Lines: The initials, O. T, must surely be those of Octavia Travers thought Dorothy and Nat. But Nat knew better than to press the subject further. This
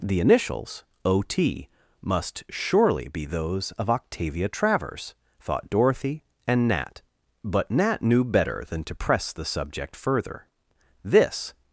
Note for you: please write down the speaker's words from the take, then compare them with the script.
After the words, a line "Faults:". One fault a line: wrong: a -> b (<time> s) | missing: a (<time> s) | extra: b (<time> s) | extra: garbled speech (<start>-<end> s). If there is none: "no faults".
The initials, O. T, must surely be those of Octavia Travers thought Dorothy and Nat. But Nat knew better than to press the subject further. This
Faults:
no faults